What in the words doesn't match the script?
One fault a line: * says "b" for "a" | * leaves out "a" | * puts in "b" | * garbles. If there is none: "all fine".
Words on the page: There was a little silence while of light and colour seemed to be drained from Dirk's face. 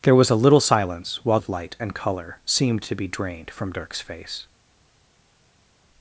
all fine